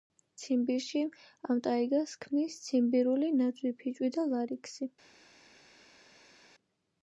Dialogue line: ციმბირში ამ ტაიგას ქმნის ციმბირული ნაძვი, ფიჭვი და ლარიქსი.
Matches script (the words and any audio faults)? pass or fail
pass